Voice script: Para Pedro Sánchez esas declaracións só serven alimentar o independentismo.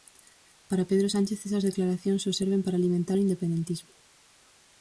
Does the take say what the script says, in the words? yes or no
no